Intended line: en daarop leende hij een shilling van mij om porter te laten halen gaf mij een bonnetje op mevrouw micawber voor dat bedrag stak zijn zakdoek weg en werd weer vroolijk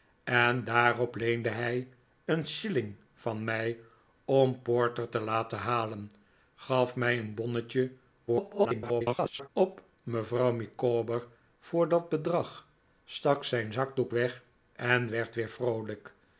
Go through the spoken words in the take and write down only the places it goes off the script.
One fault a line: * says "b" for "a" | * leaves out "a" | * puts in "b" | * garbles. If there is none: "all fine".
* garbles